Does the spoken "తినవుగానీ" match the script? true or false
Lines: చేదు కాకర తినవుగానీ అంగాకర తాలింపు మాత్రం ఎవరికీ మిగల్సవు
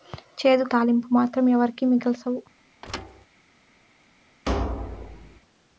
false